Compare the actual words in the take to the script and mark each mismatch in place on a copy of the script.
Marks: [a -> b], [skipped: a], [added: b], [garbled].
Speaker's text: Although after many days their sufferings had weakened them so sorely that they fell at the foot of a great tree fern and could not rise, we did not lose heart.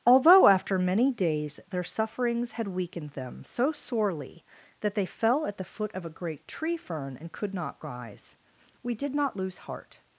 Although after many days their sufferings had weakened them so sorely that they fell at the foot of a great tree fern and could not rise, we did not lose heart.